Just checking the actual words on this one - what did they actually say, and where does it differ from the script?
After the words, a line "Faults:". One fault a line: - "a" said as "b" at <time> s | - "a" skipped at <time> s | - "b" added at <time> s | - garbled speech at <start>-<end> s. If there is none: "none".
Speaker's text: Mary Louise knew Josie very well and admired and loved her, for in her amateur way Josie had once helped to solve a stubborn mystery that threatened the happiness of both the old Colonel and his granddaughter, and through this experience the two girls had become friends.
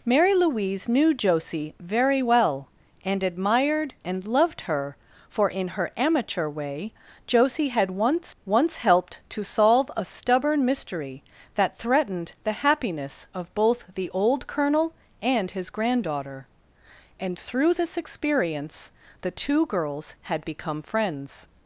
Mary Louise knew Josie very well and admired and loved her, for in her amateur way Josie had once once helped to solve a stubborn mystery that threatened the happiness of both the old Colonel and his granddaughter, and through this experience the two girls had become friends.
Faults:
- "once" added at 8.4 s